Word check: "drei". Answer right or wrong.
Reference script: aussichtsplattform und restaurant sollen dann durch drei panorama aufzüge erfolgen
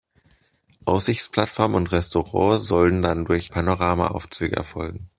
wrong